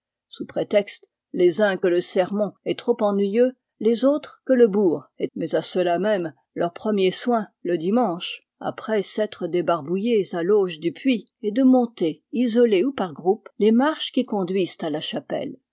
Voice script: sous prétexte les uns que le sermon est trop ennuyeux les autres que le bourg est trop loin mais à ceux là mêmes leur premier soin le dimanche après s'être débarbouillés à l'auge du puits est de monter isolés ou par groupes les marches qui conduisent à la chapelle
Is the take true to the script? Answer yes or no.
no